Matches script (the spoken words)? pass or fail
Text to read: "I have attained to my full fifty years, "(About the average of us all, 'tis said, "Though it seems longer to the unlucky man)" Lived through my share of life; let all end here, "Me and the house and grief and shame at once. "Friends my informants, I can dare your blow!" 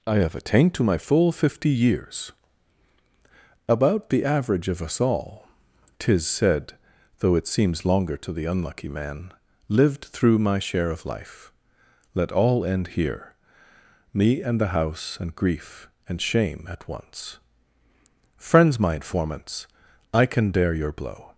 pass